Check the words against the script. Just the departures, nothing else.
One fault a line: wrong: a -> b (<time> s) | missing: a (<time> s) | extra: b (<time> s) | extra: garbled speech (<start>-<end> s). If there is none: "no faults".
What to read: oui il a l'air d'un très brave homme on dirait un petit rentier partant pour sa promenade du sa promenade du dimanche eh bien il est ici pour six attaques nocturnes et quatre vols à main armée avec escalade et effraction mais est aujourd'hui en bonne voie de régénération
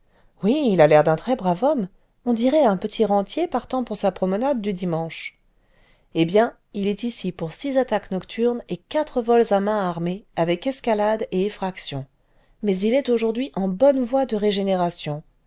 missing: sa promenade du (4.7 s)
extra: il (12.8 s)